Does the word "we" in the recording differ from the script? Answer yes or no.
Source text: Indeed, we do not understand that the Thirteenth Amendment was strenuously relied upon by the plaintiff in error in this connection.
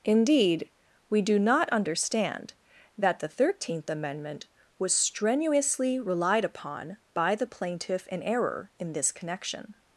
no